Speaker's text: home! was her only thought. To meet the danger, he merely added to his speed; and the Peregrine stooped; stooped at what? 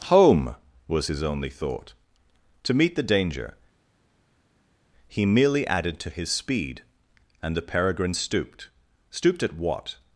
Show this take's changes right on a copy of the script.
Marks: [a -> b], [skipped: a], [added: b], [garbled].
home! was [her -> his] only thought. To meet the danger, he merely added to his speed; and the Peregrine stooped; stooped at what?